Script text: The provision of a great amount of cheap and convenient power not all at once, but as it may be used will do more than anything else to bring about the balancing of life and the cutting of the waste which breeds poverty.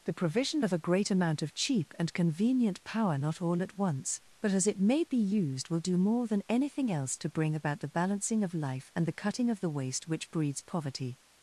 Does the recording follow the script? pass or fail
pass